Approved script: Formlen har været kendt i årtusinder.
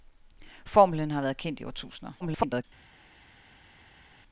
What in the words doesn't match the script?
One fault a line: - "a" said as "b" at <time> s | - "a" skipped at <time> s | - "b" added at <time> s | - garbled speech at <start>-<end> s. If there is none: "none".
- garbled speech at 2.2-2.6 s